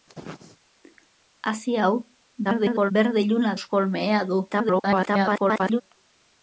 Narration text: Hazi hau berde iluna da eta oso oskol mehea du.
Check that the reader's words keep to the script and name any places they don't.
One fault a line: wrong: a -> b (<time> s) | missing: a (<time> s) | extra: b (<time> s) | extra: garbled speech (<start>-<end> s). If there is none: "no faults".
extra: garbled speech (2.4-2.9 s)
missing: da eta oso (3.6 s)
extra: garbled speech (4.5-5.8 s)